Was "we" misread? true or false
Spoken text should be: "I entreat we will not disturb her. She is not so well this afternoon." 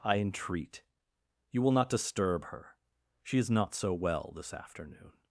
true